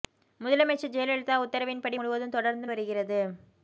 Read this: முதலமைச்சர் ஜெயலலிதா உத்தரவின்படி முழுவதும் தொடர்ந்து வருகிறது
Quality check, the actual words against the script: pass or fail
pass